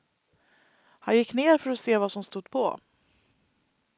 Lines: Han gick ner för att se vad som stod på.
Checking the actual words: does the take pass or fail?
pass